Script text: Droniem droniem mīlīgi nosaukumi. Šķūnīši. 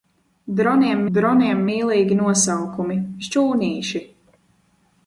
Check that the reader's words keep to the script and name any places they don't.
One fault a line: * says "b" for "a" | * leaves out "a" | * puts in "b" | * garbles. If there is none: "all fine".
all fine